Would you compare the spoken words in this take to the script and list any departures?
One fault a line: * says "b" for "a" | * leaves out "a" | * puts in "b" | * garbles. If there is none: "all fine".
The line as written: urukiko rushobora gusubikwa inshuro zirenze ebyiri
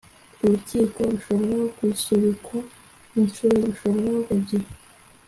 * says "rushobora" for "zirenze"